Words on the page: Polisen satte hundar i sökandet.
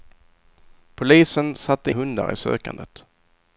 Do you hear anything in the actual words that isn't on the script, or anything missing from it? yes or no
no